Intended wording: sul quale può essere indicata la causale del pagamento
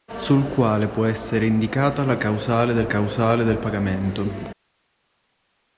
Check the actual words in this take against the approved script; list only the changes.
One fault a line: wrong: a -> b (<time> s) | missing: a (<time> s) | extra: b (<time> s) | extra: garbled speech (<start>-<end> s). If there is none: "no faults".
extra: causale del (2.9 s)